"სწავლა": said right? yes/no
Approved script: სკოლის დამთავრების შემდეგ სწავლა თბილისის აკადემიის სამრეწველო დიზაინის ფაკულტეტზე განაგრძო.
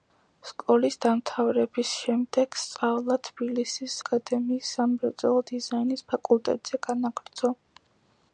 yes